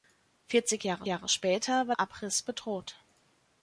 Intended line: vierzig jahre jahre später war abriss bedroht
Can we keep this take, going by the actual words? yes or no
yes